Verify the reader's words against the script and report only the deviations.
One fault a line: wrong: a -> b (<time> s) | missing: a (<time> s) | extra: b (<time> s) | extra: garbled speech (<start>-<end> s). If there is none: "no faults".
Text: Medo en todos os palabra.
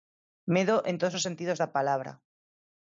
extra: sentidos da (1.3 s)